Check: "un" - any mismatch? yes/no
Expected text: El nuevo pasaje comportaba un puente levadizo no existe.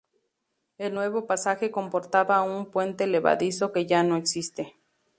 no